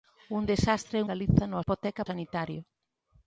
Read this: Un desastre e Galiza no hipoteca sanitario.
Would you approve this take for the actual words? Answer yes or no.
yes